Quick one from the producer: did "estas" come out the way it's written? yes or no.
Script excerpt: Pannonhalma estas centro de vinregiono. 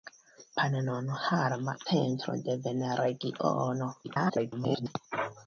no